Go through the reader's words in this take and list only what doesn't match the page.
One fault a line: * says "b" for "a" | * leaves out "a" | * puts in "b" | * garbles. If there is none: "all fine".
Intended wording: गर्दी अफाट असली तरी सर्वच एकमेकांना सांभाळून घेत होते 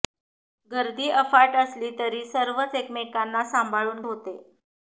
* leaves out "घेत"